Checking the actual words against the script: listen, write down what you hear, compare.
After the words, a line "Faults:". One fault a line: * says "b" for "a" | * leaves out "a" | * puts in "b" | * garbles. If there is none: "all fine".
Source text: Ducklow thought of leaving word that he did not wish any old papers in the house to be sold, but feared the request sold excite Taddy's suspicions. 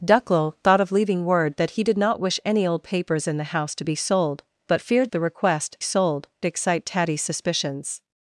Ducklow thought of leaving word that he did not wish any old papers in the house to be sold, but feared the request sold excite Taddy's suspicions.
Faults:
all fine